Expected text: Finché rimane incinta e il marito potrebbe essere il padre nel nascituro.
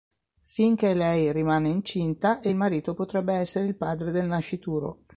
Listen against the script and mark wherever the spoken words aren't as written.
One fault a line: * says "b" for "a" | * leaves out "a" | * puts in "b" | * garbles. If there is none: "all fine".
* puts in "lei"
* says "del" for "nel"